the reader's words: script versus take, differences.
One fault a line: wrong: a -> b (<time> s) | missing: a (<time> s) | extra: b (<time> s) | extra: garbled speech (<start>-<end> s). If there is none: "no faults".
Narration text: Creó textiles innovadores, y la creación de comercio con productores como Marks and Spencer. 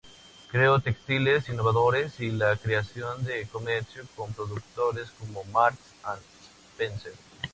no faults